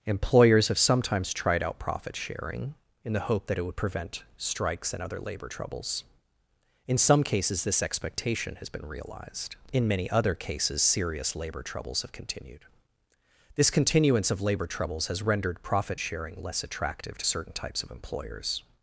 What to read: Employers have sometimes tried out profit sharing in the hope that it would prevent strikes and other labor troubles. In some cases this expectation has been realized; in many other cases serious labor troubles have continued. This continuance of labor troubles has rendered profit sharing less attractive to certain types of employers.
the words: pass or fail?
pass